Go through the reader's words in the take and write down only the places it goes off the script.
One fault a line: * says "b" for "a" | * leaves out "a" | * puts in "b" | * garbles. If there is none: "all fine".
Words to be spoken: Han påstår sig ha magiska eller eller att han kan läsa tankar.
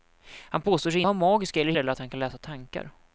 all fine